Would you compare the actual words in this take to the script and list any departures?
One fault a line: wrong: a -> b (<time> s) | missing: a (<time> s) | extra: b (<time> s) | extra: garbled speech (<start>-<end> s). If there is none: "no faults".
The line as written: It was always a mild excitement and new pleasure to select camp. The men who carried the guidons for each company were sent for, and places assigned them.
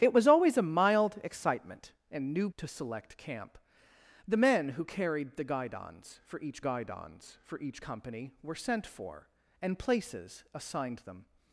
missing: pleasure (2.5 s)
extra: guidons for each (6.6 s)